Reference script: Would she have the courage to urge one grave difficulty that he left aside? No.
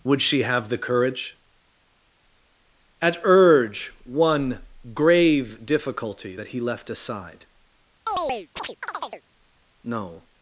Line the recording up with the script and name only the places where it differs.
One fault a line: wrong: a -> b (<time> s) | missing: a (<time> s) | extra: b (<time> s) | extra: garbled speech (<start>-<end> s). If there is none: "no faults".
wrong: to -> at (3.0 s)